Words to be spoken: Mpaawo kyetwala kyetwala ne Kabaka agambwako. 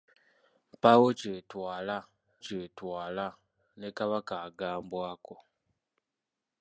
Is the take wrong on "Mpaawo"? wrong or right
right